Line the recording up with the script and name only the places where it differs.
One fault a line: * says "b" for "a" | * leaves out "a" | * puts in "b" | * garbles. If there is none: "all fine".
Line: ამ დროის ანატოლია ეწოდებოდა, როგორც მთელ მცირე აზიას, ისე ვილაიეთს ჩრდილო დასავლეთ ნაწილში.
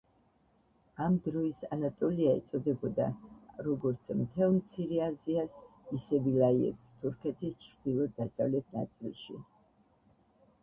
* puts in "თურქეთის"